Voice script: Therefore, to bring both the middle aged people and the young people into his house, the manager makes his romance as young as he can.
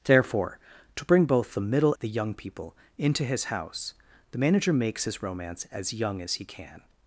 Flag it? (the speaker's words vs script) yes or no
yes